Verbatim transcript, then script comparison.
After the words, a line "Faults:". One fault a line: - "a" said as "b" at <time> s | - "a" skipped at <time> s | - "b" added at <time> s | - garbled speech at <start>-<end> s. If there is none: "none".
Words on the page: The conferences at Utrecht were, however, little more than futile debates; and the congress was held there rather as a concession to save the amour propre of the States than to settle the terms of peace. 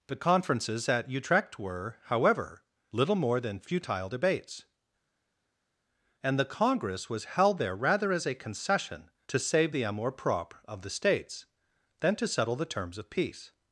The conferences at Utrecht were, however, little more than futile debates; and the congress was held there rather as a concession to save the amour propre of the States than to settle the terms of peace.
Faults:
none